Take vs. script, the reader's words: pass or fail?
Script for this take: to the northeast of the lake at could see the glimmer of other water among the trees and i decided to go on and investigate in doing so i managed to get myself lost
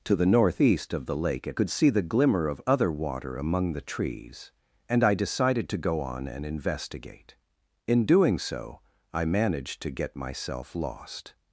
pass